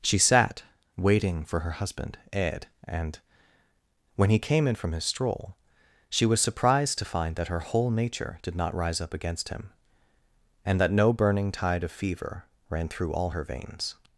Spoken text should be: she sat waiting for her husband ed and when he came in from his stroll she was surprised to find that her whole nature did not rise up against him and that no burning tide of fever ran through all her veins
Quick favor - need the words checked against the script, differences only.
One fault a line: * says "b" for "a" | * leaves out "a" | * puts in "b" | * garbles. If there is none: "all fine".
all fine